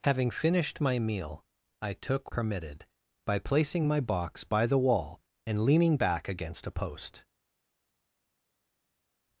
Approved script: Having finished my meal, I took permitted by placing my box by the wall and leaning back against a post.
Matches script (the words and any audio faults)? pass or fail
pass